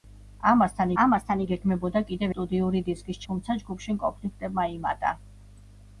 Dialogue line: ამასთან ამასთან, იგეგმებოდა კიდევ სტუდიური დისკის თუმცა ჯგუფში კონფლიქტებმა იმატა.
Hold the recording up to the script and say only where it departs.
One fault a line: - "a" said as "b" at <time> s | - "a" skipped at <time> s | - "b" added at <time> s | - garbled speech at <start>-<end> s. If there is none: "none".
none